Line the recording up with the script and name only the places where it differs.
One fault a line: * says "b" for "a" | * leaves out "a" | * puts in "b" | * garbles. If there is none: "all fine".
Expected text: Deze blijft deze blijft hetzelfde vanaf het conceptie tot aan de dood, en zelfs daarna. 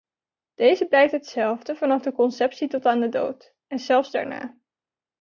* leaves out "deze blijft"
* says "de" for "het"